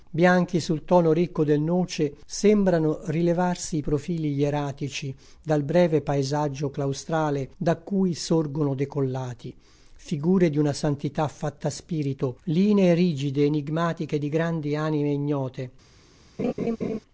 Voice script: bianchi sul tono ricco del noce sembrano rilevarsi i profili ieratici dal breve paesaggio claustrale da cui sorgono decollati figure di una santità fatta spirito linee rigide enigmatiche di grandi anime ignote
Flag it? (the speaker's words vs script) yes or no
no